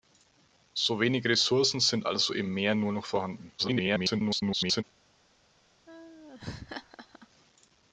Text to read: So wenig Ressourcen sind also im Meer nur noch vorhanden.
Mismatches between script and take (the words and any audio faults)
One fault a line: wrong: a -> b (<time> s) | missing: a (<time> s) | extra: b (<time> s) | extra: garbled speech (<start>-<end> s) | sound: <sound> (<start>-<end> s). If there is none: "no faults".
extra: garbled speech (3.6-4.8 s)
sound: laugh (5.9-7.3 s)